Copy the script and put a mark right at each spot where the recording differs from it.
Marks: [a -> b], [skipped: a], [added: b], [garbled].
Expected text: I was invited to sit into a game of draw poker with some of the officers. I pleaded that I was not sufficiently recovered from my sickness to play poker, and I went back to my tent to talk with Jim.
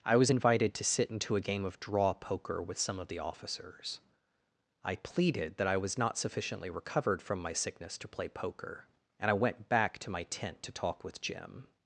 I was invited to sit into a game of draw poker with some of the officers. I pleaded that I was not sufficiently recovered from my sickness to play poker, and I went back to my tent to talk with Jim.